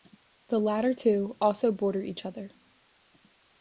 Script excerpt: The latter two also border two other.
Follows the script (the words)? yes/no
no